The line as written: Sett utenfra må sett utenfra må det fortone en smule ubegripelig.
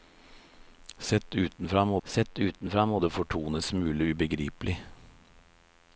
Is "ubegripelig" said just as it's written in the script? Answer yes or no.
yes